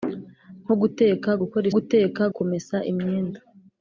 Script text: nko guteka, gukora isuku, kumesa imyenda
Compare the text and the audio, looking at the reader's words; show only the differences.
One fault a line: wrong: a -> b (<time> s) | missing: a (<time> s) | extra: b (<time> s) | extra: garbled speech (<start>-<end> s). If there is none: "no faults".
wrong: isuku -> guteka (1.7 s)